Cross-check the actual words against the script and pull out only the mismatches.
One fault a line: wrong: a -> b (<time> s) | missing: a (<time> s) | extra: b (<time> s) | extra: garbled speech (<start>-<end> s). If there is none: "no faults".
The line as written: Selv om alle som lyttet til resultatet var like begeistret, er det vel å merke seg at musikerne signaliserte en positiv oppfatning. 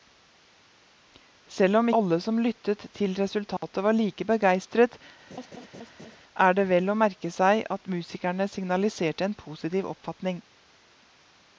no faults